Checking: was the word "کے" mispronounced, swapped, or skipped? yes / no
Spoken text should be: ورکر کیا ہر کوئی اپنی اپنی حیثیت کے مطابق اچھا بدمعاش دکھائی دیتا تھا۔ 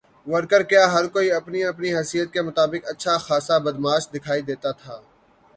no